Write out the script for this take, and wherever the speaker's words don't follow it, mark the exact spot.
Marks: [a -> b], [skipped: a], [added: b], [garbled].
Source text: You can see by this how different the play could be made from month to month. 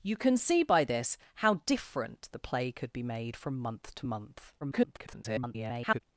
You can see by this how different the play could be made from month to month. [garbled]